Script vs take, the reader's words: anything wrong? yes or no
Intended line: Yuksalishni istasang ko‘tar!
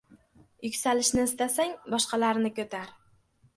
yes